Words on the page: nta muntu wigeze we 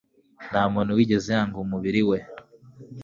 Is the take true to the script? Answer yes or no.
no